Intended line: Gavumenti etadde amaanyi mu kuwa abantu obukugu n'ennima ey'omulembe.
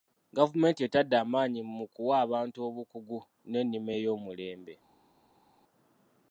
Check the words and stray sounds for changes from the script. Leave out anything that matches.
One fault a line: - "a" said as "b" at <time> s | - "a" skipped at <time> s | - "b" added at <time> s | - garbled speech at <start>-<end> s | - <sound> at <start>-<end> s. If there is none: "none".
none